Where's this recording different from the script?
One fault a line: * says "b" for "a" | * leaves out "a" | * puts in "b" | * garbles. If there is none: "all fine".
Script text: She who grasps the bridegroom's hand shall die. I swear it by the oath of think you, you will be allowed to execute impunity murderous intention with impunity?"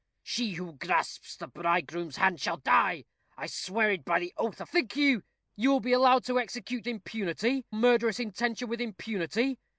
all fine